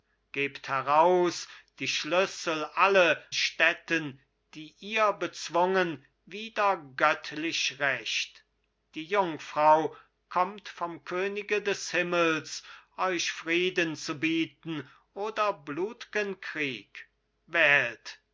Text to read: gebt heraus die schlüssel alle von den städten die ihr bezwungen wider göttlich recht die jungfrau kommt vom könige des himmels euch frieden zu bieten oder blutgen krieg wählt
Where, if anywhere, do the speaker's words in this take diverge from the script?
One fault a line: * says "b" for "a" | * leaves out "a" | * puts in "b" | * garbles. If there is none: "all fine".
* leaves out "von den"